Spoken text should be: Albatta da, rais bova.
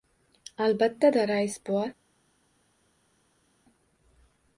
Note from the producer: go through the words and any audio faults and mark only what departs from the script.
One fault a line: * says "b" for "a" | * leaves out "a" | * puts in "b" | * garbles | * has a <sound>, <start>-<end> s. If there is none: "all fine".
all fine